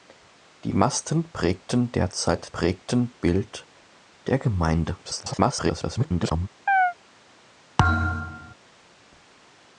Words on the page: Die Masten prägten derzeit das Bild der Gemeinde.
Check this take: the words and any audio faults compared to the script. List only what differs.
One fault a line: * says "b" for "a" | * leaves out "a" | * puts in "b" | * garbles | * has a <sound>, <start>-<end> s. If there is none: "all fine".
* says "prägten" for "das"
* garbles
* has a chirp, 6.7-6.9 s
* has a thud, 7.8-8.5 s